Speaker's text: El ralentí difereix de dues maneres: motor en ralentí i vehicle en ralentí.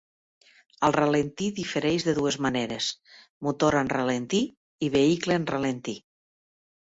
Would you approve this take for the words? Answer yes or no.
yes